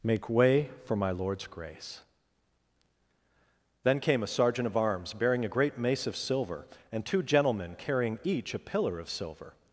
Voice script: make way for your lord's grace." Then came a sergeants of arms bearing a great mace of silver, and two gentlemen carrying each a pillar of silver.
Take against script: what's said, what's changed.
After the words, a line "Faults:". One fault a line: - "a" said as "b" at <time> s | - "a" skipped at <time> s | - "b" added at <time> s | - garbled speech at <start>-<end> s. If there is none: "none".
make way for my lord's grace." Then came a sergeant of arms bearing a great mace of silver, and two gentlemen carrying each a pillar of silver.
Faults:
- "your" said as "my" at 0.9 s
- "sergeants" said as "sergeant" at 4.3 s